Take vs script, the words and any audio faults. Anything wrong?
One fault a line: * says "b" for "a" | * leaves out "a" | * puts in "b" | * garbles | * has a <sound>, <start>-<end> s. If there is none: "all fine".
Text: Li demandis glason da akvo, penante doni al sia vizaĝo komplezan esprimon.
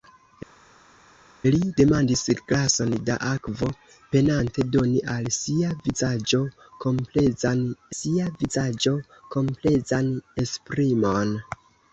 * puts in "sia vizaĝo komplezan"